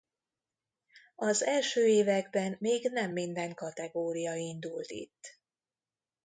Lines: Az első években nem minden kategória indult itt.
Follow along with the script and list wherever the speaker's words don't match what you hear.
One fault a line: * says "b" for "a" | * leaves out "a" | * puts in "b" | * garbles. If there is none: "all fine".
* puts in "még"